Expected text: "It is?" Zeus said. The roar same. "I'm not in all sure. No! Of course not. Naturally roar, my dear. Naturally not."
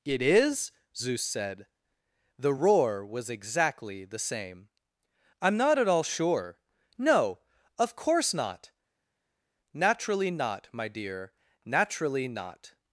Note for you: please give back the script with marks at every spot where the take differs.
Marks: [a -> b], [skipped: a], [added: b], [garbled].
"It is?" Zeus said. The roar [added: was exactly the] same. "I'm not [in -> at] all sure. No! Of course not. Naturally [roar, -> not] my dear. Naturally not."